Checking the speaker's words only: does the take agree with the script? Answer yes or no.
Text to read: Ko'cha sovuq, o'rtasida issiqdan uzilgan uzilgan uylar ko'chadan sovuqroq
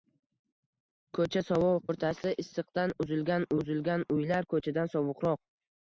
yes